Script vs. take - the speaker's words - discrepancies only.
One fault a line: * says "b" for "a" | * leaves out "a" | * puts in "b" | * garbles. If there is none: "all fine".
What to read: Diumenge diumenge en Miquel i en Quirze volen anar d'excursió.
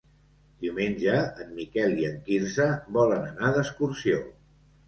* leaves out "diumenge"